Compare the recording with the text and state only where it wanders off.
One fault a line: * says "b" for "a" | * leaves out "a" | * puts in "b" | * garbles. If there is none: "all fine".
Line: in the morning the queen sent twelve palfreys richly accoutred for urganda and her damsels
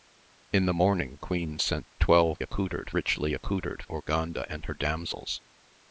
* leaves out "the"
* says "accoutred" for "palfreys"
* leaves out "for"